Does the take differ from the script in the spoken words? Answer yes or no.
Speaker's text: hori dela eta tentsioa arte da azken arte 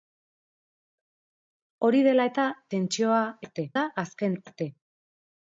no